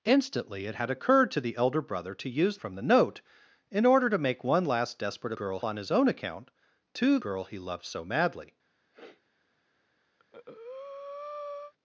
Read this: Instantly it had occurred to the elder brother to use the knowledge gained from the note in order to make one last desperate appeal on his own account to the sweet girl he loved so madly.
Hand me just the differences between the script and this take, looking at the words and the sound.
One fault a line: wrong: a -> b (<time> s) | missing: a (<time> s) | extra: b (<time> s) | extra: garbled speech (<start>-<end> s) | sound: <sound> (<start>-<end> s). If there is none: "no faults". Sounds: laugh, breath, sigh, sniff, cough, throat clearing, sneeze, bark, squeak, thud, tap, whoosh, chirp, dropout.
missing: the knowledge gained (2.6 s)
wrong: appeal -> girl (5.3 s)
missing: the sweet (7.2 s)
sound: sniff (8.9-9.2 s)
sound: breath (10.2-11.7 s)